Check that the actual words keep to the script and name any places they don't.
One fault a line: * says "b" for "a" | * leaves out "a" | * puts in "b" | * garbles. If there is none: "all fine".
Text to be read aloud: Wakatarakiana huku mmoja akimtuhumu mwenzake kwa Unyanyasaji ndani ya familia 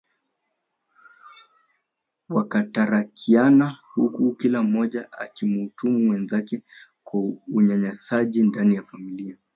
* puts in "kila"